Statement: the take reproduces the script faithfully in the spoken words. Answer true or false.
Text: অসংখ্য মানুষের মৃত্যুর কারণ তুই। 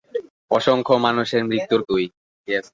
false